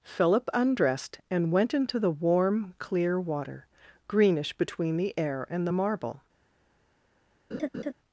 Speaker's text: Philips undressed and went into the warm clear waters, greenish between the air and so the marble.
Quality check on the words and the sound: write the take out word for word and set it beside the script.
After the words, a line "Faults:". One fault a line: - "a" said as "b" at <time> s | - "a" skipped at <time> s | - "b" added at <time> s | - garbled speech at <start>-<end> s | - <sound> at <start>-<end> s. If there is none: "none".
Philip undressed and went into the warm clear water, greenish between the air and the marble.
Faults:
- "Philips" said as "Philip" at 0.0 s
- "waters" said as "water" at 3.2 s
- "so" skipped at 5.7 s
- laugh at 7.5-7.9 s